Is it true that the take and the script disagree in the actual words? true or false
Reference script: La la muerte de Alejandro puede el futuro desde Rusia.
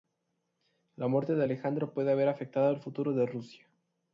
true